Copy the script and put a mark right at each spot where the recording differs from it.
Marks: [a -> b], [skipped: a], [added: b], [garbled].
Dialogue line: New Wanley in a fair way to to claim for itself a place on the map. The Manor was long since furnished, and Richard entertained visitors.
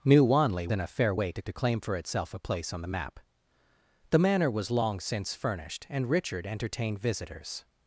New Wanley in a fair way to to claim for itself a place on the map. The Manor was long since furnished, and Richard entertained visitors.